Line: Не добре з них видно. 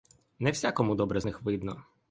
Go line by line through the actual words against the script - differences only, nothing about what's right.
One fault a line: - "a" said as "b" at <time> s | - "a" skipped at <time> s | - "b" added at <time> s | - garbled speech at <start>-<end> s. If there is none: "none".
- "всякому" added at 0.5 s